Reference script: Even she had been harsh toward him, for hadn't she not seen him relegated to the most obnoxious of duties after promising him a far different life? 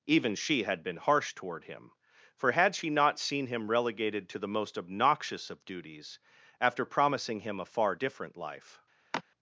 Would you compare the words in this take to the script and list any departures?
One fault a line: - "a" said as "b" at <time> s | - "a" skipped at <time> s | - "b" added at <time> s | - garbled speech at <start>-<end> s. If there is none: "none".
- "hadn't" said as "had" at 2.5 s